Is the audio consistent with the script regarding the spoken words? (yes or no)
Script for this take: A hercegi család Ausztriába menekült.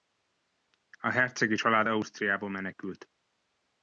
yes